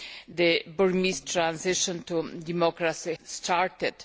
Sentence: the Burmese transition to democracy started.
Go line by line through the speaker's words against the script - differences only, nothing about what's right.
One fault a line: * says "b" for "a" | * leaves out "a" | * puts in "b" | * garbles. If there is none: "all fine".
all fine